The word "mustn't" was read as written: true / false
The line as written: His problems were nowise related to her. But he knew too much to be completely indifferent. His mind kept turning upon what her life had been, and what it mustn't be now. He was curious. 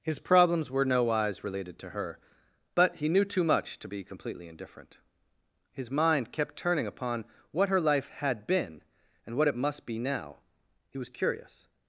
false